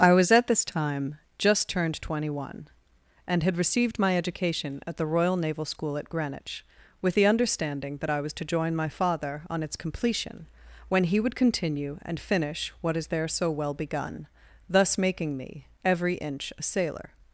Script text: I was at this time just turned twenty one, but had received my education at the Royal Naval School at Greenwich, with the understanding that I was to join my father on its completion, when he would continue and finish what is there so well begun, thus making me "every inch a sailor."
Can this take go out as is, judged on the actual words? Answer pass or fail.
fail